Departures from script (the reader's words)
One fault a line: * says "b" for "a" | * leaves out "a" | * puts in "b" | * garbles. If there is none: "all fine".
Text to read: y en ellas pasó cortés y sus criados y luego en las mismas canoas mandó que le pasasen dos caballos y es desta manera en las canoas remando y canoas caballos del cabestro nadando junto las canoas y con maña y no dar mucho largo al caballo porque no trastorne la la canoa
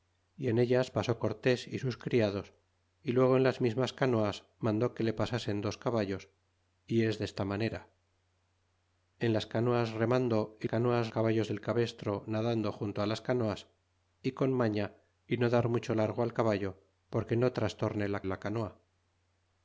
all fine